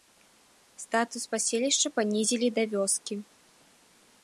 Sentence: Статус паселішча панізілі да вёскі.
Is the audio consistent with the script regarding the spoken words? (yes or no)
yes